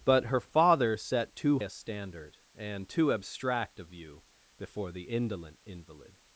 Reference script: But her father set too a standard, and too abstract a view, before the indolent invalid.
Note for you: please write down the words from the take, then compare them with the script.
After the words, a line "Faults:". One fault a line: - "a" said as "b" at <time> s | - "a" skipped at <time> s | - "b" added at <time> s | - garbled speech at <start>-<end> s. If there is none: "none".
But her father set too a standard, and too abstract a view, before the indolent invalid.
Faults:
none